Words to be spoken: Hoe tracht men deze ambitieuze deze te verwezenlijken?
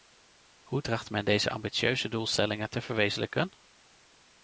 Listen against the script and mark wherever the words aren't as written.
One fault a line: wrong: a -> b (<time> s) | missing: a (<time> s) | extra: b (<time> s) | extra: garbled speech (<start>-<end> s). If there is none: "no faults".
wrong: deze -> doelstellingen (2.1 s)